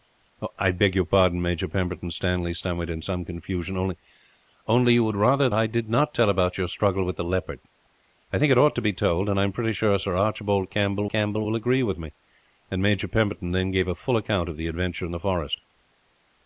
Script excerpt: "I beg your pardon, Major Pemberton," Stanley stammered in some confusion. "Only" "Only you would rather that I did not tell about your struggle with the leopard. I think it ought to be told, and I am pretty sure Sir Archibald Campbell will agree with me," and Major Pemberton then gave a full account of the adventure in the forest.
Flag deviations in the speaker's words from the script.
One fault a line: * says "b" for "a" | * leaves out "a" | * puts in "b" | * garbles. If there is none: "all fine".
* leaves out "that"
* puts in "Campbell"